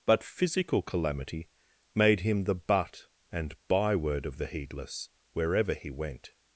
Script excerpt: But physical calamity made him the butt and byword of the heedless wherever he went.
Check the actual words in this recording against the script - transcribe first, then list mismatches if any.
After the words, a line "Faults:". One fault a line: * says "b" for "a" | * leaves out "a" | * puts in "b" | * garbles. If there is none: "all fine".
But physical calamity made him the butt and byword of the heedless wherever he went.
Faults:
all fine